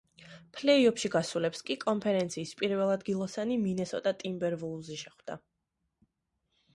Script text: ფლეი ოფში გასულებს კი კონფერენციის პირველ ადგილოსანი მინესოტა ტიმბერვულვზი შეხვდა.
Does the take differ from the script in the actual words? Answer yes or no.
no